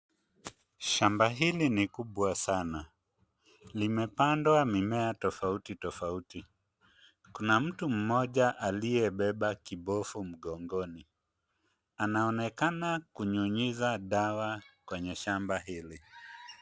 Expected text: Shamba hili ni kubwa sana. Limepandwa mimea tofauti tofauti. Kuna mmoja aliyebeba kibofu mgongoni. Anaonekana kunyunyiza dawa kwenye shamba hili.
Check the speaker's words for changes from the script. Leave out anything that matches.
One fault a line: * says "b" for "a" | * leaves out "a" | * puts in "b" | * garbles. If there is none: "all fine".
* puts in "mtu"